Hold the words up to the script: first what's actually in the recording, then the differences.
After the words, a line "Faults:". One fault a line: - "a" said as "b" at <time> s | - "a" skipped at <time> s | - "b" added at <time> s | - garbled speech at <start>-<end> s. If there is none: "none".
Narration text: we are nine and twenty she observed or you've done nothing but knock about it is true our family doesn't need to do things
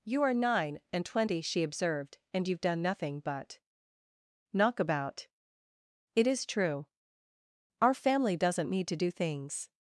you are nine and twenty she observed and you've done nothing but knock about it is true our family doesn't need to do things
Faults:
- "we" said as "you" at 0.0 s
- "or" said as "and" at 2.3 s